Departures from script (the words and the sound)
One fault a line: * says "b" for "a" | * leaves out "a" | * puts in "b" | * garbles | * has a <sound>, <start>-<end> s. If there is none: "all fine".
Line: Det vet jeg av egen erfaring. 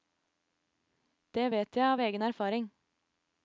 all fine